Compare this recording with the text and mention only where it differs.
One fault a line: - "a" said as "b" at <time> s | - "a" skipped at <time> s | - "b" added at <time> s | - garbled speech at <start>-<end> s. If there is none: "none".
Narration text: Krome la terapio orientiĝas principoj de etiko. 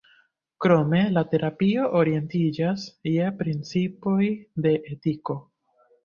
- "je" added at 3.1 s